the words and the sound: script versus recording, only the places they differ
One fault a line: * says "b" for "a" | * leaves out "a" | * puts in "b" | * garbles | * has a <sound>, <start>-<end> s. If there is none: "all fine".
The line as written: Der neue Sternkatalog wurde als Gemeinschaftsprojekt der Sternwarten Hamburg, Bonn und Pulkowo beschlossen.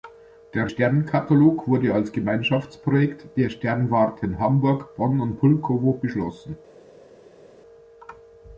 * leaves out "neue"